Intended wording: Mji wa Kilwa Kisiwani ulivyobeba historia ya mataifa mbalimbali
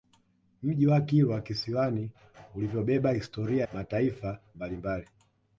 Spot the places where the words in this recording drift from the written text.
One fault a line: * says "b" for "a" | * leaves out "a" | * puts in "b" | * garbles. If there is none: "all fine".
* leaves out "ya"